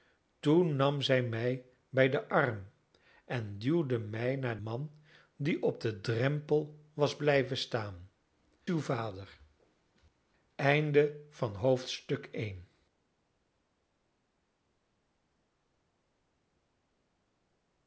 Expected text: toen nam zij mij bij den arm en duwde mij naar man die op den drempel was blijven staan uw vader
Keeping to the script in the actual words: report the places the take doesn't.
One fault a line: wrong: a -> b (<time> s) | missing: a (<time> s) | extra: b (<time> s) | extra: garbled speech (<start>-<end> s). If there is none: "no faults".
no faults